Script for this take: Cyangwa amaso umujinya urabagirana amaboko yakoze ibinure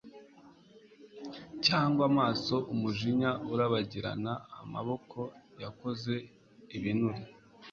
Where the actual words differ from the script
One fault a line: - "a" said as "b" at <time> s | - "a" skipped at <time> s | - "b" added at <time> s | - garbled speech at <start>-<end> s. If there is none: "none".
none